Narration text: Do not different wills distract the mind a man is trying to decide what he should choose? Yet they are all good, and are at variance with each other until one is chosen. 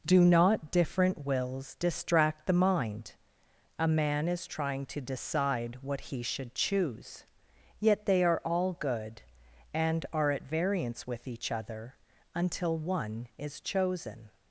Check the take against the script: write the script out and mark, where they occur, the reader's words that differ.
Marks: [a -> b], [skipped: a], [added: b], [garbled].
Do not different wills distract the mind a man is trying to decide what he should choose? Yet they are all good, and are at variance with each other until one is chosen.